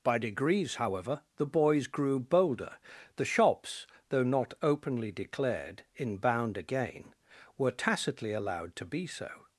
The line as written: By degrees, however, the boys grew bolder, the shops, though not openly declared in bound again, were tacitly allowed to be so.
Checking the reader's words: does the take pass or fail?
pass